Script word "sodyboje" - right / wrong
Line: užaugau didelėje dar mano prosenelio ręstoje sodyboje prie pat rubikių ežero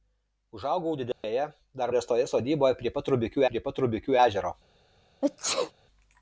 wrong